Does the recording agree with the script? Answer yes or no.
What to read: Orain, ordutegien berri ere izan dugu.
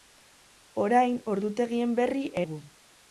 no